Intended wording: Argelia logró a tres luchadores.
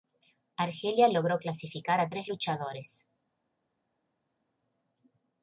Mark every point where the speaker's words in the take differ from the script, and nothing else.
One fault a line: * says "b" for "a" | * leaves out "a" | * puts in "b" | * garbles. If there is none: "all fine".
* puts in "clasificar"